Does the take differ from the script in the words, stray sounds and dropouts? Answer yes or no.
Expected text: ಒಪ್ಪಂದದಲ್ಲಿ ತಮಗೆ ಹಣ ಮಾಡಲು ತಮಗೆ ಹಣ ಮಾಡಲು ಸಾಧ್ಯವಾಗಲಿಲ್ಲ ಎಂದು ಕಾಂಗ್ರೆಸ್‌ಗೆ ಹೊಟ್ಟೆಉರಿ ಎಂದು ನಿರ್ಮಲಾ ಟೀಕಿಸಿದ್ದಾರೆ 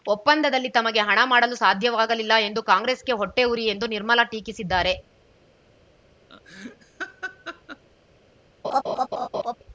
yes